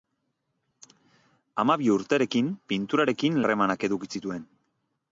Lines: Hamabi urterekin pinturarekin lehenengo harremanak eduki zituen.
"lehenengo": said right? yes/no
no